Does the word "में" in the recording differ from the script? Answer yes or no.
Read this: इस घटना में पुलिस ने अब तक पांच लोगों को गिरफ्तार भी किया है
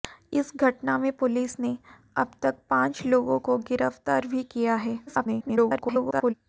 no